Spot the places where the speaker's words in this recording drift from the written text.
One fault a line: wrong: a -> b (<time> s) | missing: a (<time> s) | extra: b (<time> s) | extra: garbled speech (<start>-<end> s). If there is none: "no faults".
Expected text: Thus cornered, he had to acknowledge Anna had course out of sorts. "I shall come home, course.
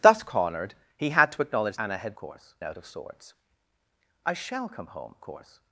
no faults